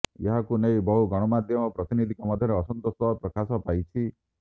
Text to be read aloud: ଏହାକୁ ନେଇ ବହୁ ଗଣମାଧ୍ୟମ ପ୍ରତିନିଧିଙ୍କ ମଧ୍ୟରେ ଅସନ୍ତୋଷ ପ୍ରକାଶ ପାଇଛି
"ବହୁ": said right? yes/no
yes